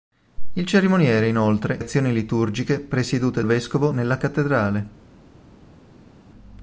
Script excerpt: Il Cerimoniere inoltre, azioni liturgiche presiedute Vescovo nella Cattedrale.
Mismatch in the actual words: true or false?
false